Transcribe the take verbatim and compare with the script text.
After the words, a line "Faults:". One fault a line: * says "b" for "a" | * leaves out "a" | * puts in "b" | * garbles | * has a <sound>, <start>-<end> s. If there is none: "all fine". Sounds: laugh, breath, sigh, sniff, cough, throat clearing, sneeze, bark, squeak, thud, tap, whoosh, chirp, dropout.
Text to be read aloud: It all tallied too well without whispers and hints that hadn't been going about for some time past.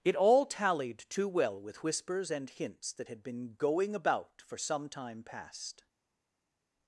It all tallied too well with whispers and hints that had been going about for some time past.
Faults:
* says "with" for "without"
* says "had" for "hadn't"